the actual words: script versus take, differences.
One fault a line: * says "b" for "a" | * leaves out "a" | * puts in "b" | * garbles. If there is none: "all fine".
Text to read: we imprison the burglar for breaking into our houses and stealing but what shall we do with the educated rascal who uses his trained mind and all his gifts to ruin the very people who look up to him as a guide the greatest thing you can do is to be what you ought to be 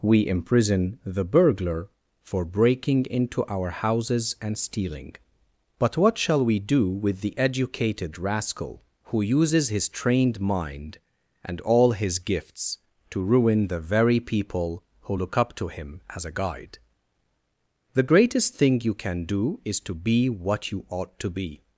all fine